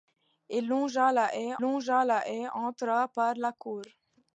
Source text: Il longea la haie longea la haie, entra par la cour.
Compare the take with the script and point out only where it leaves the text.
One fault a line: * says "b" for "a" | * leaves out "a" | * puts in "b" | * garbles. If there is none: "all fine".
all fine